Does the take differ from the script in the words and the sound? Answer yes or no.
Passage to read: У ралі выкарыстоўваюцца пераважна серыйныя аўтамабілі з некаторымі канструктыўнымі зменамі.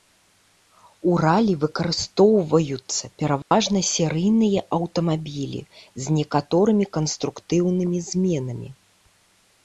yes